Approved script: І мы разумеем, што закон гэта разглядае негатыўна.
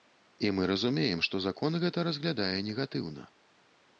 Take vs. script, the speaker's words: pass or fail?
pass